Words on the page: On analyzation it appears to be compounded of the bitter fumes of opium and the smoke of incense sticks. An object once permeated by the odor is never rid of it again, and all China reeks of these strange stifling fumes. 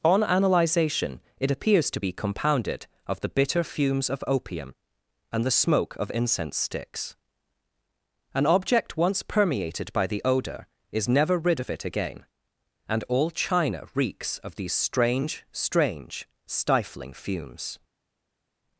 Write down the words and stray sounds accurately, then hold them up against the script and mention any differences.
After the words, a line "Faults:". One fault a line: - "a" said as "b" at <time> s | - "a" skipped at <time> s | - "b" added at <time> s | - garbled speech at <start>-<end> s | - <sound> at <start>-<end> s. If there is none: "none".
On analyzation it appears to be compounded of the bitter fumes of opium and the smoke of incense sticks. An object once permeated by the odor is never rid of it again, and all China reeks of these strange strange stifling fumes.
Faults:
- "strange" added at 15.5 s